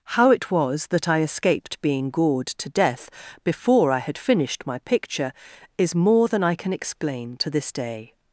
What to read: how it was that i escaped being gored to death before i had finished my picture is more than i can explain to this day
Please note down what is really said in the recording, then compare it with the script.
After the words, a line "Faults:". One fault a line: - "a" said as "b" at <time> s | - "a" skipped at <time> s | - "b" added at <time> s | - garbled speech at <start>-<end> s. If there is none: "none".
how it was that i escaped being gored to death before i had finished my picture is more than i can explain to this day
Faults:
none